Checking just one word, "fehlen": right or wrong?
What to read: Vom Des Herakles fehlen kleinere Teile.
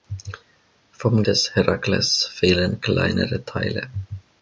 right